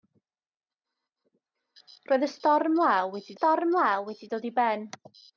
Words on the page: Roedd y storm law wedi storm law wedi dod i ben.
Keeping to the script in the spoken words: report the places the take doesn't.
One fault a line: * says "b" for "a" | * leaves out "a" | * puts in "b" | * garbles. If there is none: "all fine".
all fine